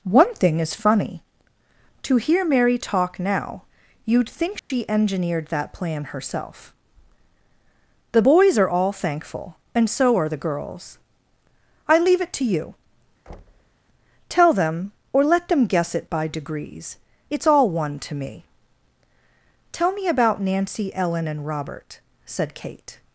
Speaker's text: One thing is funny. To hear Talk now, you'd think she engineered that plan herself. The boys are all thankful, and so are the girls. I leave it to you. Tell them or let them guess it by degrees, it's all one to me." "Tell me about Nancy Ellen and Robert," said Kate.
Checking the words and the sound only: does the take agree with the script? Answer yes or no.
no